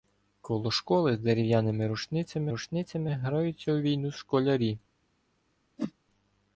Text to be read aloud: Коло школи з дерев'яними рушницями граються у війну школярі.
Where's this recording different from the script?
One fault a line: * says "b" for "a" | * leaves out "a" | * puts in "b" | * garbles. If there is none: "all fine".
* puts in "рушницями"